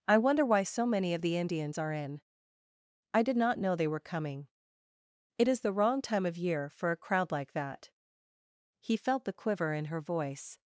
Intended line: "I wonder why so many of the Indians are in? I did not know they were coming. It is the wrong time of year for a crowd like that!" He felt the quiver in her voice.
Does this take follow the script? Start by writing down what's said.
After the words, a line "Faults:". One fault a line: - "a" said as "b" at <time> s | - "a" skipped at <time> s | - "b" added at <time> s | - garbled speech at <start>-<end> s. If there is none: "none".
"I wonder why so many of the Indians are in? I did not know they were coming. It is the wrong time of year for a crowd like that!" He felt the quiver in her voice.
Faults:
none